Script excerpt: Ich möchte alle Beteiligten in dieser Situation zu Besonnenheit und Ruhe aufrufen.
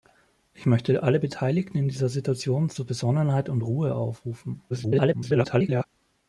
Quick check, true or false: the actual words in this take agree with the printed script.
false